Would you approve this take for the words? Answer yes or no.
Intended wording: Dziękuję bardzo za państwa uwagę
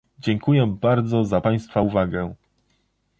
yes